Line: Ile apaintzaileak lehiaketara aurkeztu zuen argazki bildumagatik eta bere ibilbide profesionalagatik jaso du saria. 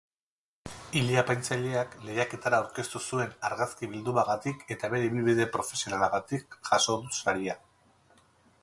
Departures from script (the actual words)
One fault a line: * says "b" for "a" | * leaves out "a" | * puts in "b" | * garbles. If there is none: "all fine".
all fine